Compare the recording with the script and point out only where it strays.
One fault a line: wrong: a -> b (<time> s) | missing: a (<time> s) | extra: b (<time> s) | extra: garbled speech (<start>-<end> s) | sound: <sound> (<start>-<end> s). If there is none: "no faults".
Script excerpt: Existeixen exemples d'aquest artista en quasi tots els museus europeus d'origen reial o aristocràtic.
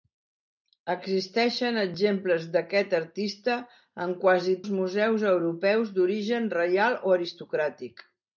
missing: tots (4.6 s)